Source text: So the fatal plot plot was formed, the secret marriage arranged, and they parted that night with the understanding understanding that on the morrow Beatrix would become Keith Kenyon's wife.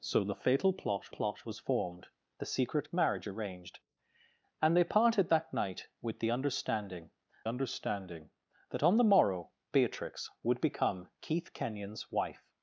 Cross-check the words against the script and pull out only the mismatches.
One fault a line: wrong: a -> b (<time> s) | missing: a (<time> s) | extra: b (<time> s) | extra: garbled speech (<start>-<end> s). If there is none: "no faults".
no faults